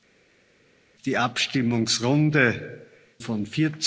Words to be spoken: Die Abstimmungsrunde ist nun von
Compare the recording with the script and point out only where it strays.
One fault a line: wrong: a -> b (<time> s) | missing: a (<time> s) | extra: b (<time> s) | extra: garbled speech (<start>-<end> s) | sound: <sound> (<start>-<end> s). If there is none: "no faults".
missing: ist nun (2.8 s)